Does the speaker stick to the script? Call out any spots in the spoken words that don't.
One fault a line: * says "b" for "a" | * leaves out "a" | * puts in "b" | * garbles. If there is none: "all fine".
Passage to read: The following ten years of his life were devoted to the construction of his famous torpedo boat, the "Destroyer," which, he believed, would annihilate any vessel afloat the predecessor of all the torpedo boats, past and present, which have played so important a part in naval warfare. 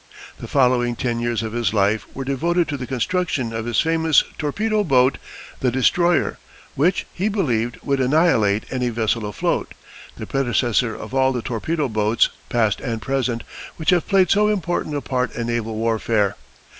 all fine